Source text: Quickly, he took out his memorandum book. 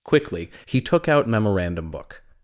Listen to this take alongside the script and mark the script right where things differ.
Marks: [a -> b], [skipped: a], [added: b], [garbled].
Quickly, he took out [skipped: his] memorandum book.